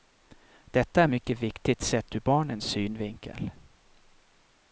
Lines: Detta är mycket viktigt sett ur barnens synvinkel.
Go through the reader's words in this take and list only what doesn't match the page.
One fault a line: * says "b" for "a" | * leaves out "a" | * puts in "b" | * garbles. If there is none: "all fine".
all fine